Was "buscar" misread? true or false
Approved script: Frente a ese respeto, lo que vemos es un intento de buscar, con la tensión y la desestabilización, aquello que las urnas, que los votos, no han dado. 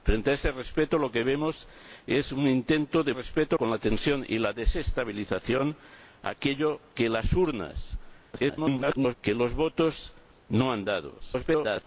true